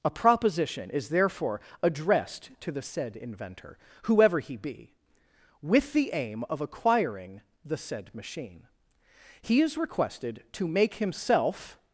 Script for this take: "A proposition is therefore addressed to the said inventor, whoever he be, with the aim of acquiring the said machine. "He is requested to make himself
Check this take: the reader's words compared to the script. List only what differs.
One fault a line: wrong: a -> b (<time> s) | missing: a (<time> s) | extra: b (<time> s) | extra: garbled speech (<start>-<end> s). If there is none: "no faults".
no faults